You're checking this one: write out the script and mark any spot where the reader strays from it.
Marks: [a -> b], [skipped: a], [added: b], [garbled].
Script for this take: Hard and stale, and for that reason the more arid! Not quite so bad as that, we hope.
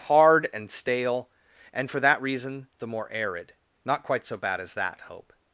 Hard and stale, and for that reason the more arid! Not quite so bad as that, [skipped: we] hope.